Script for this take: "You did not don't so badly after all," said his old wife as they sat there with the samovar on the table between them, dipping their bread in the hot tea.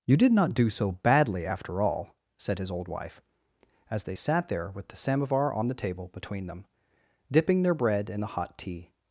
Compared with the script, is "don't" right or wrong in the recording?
wrong